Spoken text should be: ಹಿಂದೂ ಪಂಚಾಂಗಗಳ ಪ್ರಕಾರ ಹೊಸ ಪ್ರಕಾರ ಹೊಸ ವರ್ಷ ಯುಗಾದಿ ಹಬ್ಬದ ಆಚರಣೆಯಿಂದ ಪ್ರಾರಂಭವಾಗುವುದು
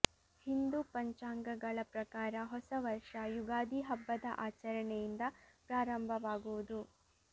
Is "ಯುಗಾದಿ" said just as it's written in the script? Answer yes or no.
yes